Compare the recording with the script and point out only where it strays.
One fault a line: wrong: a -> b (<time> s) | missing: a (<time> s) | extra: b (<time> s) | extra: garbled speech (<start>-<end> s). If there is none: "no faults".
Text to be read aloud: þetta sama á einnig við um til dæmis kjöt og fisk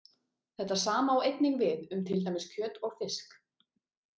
no faults